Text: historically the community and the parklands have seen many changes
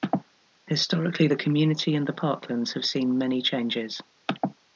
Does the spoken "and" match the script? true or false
true